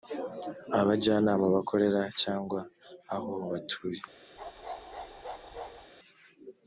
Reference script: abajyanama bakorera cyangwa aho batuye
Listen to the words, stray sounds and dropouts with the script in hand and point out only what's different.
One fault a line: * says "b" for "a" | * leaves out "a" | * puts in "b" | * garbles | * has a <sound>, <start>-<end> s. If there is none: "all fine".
* has a bark, 4.4-5.9 s